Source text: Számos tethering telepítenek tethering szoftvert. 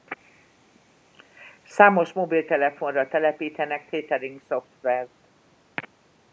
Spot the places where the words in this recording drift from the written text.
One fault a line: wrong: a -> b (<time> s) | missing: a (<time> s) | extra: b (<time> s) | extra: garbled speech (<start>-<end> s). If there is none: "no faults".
wrong: tethering -> mobiltelefonra (2.1 s)